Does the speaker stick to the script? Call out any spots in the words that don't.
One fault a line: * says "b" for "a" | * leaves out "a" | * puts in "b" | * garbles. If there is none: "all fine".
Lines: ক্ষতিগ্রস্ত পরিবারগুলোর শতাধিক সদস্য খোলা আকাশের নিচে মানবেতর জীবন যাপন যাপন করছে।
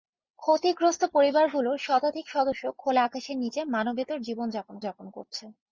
all fine